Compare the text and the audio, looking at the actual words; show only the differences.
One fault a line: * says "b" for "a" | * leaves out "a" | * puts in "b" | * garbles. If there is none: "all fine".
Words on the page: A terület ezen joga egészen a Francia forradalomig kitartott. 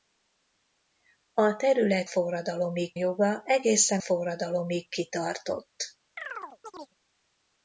* says "forradalomig" for "ezen"
* leaves out "a Francia"